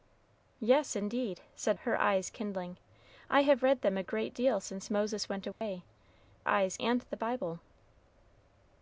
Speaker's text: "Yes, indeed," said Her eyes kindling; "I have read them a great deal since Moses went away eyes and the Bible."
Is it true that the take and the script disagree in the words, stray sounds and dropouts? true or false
true